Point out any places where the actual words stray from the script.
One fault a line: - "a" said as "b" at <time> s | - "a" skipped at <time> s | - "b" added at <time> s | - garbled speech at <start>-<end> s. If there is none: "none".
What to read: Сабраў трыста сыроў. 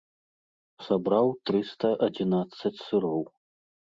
- "адзінаццаць" added at 2.1 s